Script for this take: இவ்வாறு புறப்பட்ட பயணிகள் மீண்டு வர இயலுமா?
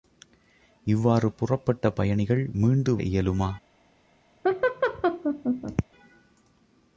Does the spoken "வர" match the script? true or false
false